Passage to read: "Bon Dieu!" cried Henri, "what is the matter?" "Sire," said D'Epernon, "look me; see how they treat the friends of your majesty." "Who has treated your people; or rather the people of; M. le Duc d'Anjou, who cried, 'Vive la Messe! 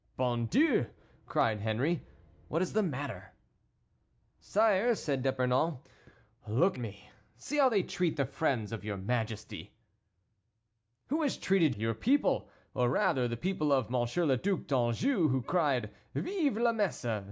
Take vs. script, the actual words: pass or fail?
pass